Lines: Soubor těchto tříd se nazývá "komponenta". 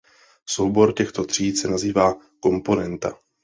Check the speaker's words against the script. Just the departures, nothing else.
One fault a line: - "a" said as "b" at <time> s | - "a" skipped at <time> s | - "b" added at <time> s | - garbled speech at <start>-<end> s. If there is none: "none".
none